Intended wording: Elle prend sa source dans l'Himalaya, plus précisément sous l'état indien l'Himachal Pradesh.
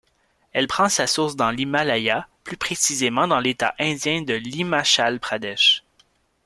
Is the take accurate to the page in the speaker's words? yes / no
no